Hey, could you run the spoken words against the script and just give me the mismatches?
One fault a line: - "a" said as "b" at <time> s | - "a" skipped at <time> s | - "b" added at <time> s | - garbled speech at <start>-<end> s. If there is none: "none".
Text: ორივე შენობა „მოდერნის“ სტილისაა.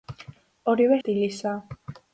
- "შენობა მოდერნის" skipped at 1.0 s